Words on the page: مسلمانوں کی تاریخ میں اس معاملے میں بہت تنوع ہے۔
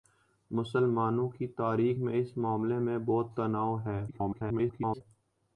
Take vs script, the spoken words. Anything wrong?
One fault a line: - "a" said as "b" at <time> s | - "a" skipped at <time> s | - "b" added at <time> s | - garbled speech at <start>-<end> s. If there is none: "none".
- garbled speech at 4.1-5.0 s